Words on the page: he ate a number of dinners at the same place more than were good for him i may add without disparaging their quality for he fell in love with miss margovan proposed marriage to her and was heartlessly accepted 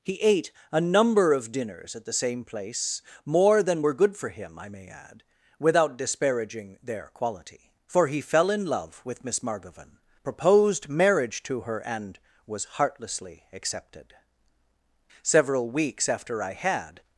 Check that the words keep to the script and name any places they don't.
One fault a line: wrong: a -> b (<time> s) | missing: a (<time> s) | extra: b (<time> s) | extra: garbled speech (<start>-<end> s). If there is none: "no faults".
extra: several weeks after i had (15.2 s)